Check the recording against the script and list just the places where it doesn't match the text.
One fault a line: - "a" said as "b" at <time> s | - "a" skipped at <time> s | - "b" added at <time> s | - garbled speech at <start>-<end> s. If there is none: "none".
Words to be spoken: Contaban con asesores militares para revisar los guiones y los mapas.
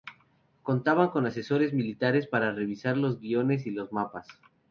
none